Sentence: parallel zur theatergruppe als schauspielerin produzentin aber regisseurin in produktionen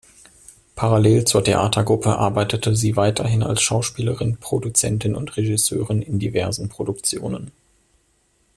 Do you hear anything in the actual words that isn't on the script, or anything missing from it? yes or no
yes